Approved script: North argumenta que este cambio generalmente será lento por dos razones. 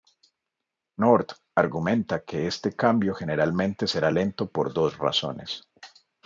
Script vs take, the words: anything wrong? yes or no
no